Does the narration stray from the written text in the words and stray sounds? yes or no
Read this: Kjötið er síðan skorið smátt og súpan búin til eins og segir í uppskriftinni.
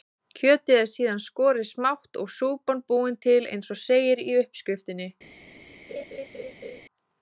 yes